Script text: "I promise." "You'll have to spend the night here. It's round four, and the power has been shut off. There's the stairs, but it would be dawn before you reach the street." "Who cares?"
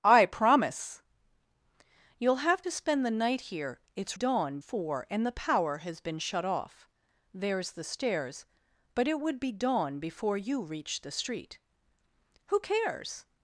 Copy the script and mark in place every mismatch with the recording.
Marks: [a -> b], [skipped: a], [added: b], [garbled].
"I promise." "You'll have to spend the night here. It's [round -> dawn] four, and the power has been shut off. There's the stairs, but it would be dawn before you reach the street." "Who cares?"